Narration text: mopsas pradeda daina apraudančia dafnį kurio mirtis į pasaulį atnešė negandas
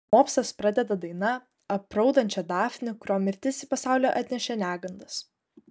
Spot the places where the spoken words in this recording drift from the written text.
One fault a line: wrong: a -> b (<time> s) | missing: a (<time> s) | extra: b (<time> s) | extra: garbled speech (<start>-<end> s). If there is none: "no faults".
no faults